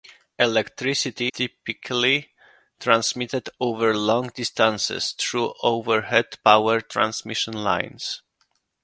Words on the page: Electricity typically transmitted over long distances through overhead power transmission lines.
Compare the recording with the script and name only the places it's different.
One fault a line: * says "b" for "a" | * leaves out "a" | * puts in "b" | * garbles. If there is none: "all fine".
all fine